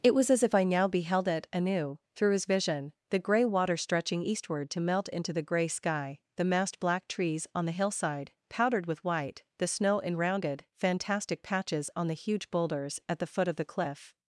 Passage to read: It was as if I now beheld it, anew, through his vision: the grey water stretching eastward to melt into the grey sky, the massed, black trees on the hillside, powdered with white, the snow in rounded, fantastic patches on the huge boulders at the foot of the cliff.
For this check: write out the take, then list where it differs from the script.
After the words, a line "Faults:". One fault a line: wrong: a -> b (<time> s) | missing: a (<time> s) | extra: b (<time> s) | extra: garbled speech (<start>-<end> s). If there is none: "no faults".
It was as if I now beheld it, anew, through his vision: the grey water stretching eastward to melt into the grey sky, the massed, black trees on the hillside, powdered with white, the snow in rounded, fantastic patches on the huge boulders at the foot of the cliff.
Faults:
no faults